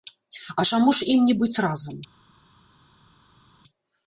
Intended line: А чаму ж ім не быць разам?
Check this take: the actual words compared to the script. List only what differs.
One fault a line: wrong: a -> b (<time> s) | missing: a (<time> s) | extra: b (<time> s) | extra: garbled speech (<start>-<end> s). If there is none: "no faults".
no faults